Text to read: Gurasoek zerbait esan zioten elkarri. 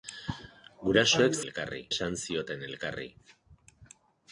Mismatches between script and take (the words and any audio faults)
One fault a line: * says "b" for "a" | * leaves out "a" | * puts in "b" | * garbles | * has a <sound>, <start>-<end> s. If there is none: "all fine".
* says "elkarri" for "zerbait"